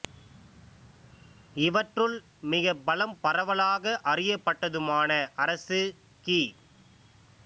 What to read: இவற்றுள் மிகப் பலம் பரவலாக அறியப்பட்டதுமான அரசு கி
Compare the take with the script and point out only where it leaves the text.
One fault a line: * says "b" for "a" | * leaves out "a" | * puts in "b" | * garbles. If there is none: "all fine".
all fine